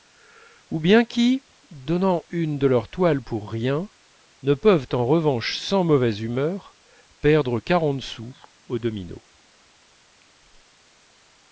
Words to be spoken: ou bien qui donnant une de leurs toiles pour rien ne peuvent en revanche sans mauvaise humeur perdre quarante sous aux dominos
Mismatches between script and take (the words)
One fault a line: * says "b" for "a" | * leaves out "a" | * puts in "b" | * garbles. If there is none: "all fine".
all fine